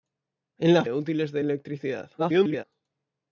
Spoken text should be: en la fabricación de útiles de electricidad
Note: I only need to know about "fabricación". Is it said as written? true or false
false